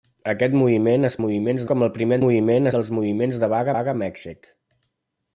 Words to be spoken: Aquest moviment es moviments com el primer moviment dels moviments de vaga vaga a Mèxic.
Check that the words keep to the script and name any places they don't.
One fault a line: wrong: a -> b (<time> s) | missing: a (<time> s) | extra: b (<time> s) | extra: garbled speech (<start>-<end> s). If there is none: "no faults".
no faults